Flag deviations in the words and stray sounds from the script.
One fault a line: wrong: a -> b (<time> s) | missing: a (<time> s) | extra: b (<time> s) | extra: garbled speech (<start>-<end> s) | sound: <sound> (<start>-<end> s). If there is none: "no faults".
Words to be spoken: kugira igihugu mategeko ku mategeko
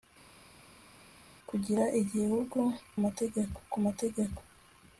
no faults